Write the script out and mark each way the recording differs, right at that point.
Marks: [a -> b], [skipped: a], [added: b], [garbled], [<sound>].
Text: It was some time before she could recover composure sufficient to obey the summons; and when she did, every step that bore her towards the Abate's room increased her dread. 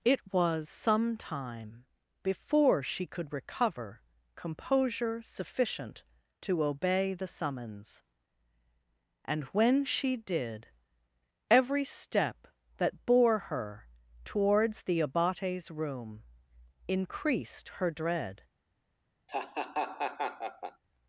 It was some time before she could recover composure sufficient to obey the summons; and when she did, every step that bore her towards the Abate's room increased her dread. [laugh]